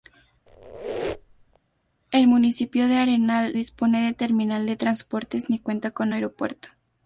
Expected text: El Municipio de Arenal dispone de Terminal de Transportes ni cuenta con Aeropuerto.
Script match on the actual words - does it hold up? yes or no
yes